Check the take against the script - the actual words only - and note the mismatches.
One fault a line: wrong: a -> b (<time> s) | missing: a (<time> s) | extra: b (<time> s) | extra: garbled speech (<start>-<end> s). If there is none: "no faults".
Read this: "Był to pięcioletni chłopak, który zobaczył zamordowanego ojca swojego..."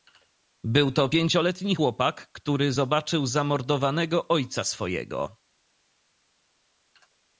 no faults